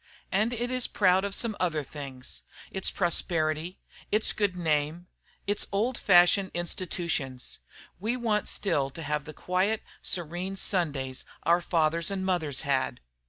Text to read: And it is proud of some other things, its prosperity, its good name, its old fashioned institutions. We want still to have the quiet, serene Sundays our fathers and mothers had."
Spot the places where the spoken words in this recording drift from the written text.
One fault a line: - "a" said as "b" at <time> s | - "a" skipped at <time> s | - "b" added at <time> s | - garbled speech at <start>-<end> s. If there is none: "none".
none